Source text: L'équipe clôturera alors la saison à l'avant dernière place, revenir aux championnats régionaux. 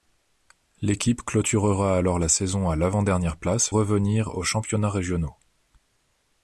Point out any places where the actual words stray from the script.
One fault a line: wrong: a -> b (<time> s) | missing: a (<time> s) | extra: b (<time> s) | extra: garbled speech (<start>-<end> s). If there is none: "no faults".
no faults